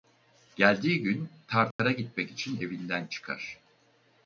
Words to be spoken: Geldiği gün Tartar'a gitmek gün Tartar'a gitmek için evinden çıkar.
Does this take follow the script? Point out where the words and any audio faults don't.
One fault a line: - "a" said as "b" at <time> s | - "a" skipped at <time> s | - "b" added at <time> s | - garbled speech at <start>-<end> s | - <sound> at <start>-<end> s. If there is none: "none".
- dropout at 1.7-1.8 s
- "gün Tartar'a gitmek" skipped at 2.3 s